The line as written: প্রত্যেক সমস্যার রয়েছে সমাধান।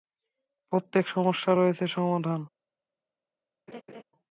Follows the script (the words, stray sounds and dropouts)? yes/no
no